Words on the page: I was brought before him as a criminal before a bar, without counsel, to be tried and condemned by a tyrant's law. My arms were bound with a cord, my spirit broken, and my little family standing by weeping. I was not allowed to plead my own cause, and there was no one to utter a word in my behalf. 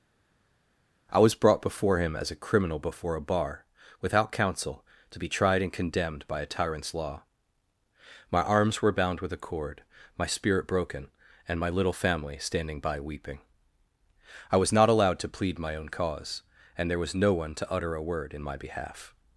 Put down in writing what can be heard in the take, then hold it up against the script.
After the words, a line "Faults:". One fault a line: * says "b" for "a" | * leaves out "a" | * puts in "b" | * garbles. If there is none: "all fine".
I was brought before him as a criminal before a bar, without counsel, to be tried and condemned by a tyrant's law. My arms were bound with a cord, my spirit broken, and my little family standing by weeping. I was not allowed to plead my own cause, and there was no one to utter a word in my behalf.
Faults:
all fine